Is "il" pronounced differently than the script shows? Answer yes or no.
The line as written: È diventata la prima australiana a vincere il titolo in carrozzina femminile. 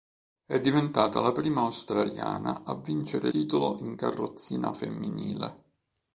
yes